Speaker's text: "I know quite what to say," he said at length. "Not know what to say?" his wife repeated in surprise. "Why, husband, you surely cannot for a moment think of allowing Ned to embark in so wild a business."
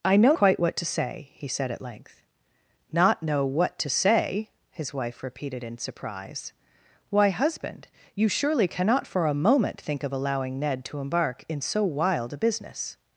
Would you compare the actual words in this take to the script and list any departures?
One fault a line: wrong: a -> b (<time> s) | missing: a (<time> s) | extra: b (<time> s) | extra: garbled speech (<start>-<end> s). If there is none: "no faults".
no faults